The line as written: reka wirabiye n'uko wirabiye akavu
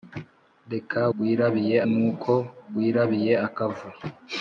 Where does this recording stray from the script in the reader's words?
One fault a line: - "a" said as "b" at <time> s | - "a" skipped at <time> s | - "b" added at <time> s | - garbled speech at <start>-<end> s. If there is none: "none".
none